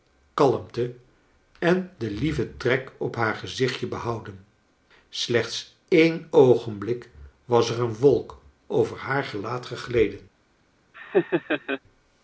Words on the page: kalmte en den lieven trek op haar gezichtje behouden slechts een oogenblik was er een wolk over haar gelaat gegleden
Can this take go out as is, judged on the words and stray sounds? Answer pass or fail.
fail